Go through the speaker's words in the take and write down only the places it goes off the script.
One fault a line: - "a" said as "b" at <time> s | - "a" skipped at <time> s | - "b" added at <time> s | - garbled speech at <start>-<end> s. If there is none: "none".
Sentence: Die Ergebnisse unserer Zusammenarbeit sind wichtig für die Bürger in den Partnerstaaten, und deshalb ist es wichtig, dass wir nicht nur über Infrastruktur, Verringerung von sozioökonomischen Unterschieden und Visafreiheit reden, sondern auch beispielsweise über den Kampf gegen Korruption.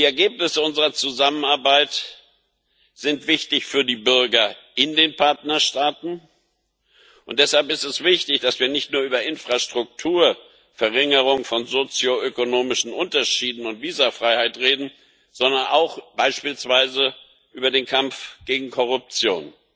none